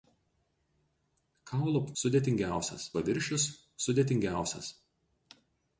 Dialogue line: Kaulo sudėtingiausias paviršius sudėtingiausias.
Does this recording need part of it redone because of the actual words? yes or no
no